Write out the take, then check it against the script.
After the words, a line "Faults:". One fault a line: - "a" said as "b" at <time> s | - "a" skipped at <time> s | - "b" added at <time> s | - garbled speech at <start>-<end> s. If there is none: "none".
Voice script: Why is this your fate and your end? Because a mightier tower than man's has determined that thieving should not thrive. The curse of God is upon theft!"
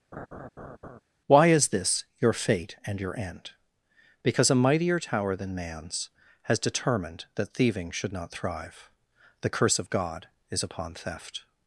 Why is this your fate and your end? Because a mightier tower than man's has determined that thieving should not thrive. The curse of God is upon theft!"
Faults:
none